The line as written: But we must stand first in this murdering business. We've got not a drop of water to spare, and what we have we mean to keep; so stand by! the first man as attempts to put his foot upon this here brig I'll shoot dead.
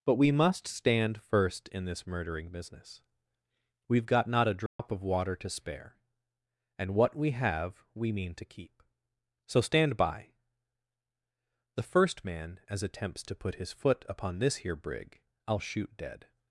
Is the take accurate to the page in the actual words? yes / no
yes